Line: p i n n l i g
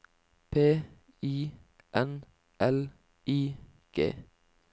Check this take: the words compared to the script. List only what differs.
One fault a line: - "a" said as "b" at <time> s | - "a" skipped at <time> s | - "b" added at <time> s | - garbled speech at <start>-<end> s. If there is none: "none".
- "n" skipped at 2.2 s